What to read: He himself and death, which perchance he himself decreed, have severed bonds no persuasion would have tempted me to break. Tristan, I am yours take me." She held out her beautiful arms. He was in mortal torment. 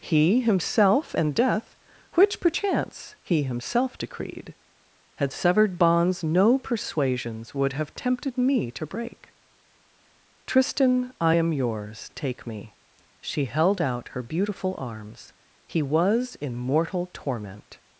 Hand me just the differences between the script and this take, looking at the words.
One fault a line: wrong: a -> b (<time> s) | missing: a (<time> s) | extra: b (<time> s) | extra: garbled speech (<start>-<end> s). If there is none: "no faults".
wrong: have -> had (5.2 s)
wrong: persuasion -> persuasions (6.6 s)